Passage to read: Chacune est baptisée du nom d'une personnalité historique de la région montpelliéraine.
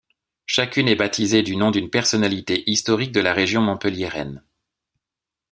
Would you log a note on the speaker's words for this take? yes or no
no